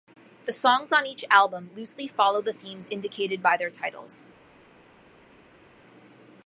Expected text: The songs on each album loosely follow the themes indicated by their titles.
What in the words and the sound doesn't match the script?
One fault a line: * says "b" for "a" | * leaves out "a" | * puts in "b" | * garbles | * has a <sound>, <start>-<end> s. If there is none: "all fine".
all fine